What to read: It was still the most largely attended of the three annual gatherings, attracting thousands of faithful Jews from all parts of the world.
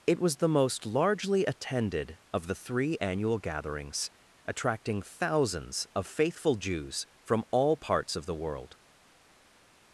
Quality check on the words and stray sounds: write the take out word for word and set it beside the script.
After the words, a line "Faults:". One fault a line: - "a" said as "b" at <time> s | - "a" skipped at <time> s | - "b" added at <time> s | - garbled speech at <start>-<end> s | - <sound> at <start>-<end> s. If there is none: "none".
It was the most largely attended of the three annual gatherings, attracting thousands of faithful Jews from all parts of the world.
Faults:
- "still" skipped at 0.4 s